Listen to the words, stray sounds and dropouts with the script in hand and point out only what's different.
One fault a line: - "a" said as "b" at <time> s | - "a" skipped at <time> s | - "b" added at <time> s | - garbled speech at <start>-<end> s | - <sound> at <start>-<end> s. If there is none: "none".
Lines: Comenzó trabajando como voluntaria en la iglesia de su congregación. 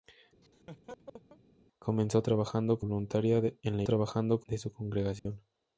- laugh at 0.4-1.4 s
- "como" skipped at 2.8 s
- "iglesia" said as "trabajando" at 3.8 s
- dropout at 5.2-5.3 s